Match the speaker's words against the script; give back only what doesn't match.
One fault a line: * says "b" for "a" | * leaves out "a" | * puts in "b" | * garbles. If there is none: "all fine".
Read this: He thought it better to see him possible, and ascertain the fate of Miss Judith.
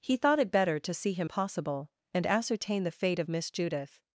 all fine